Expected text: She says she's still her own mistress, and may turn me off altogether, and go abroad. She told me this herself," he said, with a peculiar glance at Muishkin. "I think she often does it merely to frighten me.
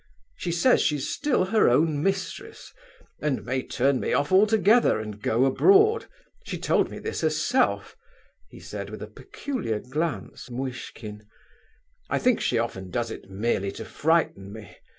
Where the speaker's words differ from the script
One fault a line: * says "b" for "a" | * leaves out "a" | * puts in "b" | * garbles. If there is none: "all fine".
* leaves out "at"